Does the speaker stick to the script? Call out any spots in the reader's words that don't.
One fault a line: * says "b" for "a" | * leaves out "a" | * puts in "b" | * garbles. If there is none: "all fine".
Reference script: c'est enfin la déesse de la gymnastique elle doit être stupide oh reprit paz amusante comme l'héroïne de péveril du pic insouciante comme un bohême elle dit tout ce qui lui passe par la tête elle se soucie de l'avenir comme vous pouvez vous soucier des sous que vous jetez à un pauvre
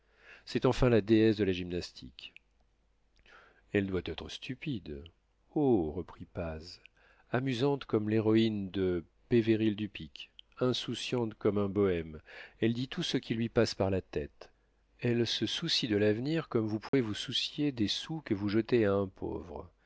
all fine